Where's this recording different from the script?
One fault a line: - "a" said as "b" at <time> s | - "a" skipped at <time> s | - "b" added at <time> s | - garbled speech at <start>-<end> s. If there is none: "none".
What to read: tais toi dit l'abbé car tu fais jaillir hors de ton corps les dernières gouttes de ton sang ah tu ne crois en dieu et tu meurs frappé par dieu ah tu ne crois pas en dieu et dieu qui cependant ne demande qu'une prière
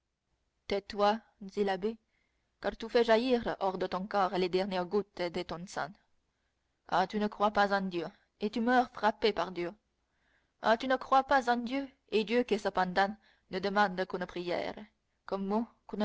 - "pas" added at 7.5 s